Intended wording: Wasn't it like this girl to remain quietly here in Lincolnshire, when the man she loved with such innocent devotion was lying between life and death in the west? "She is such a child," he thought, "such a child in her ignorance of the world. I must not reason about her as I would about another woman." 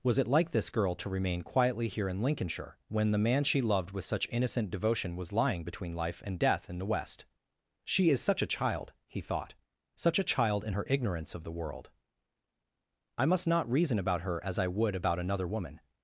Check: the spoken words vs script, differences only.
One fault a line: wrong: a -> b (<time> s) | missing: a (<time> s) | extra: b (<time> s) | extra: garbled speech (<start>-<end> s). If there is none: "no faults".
wrong: Wasn't -> Was (0.0 s)